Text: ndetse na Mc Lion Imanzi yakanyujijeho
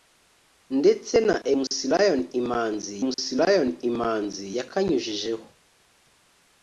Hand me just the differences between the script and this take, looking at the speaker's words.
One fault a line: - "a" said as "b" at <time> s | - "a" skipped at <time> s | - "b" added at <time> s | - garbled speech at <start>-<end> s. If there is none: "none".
- "Mc Lion Imanzi" added at 3.1 s